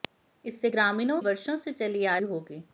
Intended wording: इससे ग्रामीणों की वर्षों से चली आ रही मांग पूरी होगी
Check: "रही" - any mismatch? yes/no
yes